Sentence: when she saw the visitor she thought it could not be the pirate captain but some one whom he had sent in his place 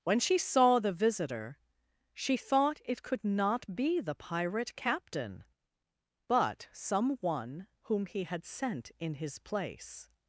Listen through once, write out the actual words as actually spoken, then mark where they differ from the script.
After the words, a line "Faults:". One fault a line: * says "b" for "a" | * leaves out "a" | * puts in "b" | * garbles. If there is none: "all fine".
when she saw the visitor she thought it could not be the pirate captain but some one whom he had sent in his place
Faults:
all fine